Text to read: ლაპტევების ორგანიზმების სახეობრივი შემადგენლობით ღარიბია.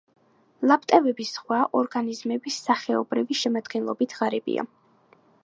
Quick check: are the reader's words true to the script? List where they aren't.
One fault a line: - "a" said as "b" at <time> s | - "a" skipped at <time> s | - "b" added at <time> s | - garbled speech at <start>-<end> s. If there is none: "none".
- "ზღვა" added at 1.4 s